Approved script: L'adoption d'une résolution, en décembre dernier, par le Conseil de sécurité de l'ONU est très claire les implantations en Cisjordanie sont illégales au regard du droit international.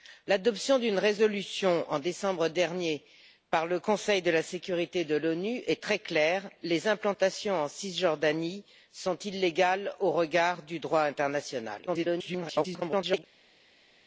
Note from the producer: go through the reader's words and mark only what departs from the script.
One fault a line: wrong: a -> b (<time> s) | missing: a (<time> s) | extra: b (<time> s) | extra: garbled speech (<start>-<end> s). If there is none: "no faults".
extra: garbled speech (11.9-13.2 s)